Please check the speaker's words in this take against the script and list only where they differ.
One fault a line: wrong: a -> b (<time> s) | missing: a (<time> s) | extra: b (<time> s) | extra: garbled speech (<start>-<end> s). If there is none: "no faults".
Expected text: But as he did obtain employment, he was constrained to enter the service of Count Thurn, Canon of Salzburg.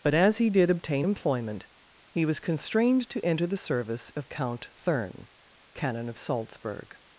no faults